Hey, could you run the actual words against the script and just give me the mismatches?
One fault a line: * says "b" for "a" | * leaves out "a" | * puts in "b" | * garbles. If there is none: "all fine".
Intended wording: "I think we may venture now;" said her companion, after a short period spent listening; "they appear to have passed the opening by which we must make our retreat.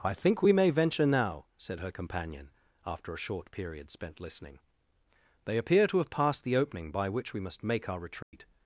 all fine